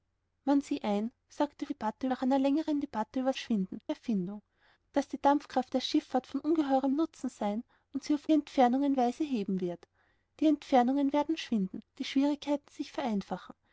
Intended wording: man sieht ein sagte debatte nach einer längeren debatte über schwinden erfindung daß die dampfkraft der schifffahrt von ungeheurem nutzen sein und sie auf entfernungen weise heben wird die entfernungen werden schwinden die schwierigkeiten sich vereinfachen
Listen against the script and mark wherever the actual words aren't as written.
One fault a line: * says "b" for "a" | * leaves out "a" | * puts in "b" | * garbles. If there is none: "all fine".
all fine